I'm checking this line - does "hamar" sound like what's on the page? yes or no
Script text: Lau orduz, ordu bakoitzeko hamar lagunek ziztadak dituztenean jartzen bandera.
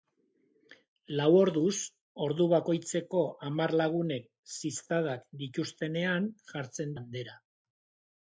yes